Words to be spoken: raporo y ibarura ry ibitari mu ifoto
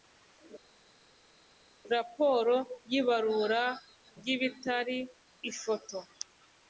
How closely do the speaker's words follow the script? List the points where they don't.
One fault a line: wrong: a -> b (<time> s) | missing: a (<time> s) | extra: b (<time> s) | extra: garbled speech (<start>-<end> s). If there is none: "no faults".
missing: mu (5.0 s)